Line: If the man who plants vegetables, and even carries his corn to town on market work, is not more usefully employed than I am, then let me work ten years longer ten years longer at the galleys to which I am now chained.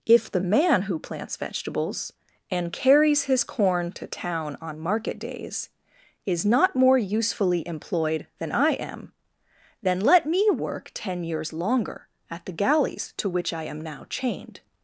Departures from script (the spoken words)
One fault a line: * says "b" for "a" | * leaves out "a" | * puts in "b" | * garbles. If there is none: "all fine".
* leaves out "even"
* says "days" for "work"
* leaves out "ten years longer"